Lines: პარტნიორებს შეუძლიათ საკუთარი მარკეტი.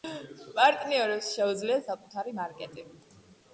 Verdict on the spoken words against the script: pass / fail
pass